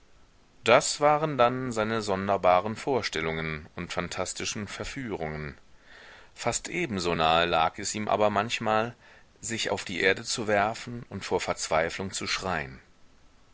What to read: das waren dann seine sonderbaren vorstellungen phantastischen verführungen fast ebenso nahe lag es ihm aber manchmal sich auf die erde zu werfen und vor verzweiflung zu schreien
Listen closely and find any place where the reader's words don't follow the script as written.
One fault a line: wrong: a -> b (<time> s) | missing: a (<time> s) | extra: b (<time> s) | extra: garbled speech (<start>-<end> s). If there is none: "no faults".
extra: und (3.8 s)